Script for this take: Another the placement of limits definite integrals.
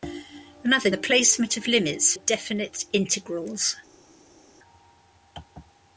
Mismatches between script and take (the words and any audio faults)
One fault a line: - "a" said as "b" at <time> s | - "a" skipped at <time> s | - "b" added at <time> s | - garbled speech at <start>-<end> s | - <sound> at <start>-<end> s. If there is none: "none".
none